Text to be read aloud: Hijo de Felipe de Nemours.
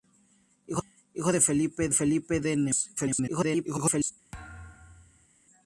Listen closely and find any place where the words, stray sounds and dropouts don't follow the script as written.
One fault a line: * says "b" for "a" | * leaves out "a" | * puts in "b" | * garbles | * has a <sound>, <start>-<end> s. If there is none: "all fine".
* puts in "Felipe"
* garbles
* has a thud, 4.3-5.3 s